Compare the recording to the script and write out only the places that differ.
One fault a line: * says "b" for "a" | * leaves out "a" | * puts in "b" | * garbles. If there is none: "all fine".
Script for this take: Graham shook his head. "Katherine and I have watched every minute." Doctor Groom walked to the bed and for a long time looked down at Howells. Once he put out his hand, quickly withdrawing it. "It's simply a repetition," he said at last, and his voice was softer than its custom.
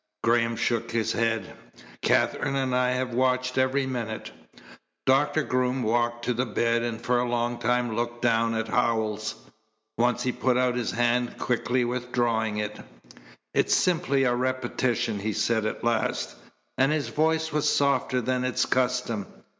all fine